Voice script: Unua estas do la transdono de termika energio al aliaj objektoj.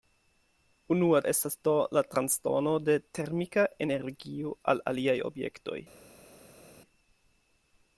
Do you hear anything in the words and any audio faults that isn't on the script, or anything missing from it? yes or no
no